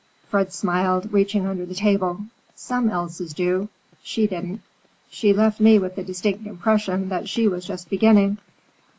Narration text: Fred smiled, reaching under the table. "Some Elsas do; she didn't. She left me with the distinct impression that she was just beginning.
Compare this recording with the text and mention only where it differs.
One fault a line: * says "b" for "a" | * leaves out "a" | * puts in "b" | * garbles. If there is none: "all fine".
all fine